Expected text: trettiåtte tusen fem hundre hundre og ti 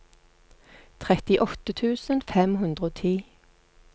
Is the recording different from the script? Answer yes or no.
yes